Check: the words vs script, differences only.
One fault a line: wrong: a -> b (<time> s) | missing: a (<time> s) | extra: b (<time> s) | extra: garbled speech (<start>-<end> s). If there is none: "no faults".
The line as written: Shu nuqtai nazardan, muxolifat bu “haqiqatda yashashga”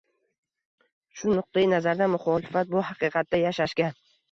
no faults